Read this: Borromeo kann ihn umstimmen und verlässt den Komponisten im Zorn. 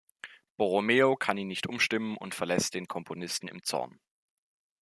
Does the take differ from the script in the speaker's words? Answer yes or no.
yes